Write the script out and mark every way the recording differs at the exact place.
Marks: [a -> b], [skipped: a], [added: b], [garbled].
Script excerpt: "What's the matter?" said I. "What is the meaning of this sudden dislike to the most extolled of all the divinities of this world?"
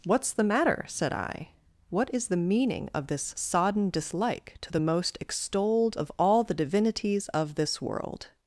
"What's the matter?" said I. "What is the meaning of this [sudden -> sodden] dislike to the most extolled of all the divinities of this world?"